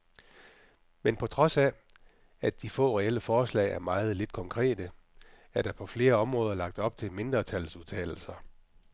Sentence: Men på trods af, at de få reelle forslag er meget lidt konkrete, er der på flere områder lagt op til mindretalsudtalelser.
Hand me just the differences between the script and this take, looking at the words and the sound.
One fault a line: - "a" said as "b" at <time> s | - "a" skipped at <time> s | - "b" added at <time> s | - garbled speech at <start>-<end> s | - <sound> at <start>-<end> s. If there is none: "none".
none